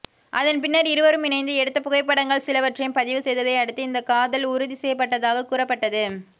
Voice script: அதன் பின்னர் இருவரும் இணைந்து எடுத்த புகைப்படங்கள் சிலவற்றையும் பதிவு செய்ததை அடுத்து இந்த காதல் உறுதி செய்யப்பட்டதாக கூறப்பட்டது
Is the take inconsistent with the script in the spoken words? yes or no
no